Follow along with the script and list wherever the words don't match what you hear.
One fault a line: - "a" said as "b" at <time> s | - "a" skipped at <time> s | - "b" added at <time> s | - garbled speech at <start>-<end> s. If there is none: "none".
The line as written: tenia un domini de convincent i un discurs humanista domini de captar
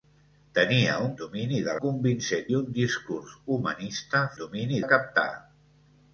none